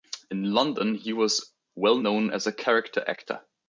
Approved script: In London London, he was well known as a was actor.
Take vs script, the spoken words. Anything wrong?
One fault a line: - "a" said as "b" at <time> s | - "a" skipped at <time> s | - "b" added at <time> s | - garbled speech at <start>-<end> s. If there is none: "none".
- "London" skipped at 0.9 s
- "was" said as "character" at 2.5 s